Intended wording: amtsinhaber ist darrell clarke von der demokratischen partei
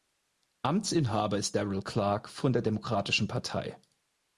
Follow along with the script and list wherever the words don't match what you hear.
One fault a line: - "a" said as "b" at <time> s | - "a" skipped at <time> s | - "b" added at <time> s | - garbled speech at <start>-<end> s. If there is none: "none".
none